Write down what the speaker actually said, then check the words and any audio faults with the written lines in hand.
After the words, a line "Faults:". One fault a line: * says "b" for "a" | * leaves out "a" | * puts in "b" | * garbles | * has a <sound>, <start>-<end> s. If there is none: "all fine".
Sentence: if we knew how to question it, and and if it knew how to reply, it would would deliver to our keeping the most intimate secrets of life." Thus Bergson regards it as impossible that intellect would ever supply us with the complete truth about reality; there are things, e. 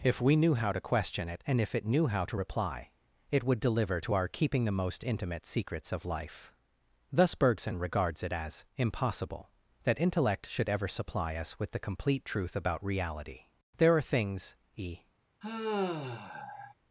if we knew how to question it, and if it knew how to reply, it would deliver to our keeping the most intimate secrets of life." Thus Bergson regards it as impossible that intellect should ever supply us with the complete truth about reality; there are things, e.
Faults:
* leaves out "and"
* leaves out "would"
* says "should" for "would"
* has a sigh, 15.4-16.7 s